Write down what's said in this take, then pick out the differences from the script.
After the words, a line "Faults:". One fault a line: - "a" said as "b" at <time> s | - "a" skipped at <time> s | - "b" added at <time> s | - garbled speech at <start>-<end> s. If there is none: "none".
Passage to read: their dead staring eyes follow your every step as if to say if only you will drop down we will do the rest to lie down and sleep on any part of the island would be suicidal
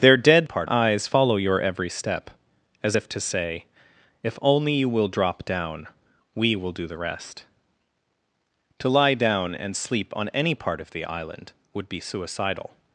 their dead part eyes follow your every step as if to say if only you will drop down we will do the rest to lie down and sleep on any part of the island would be suicidal
Faults:
- "staring" said as "part" at 0.4 s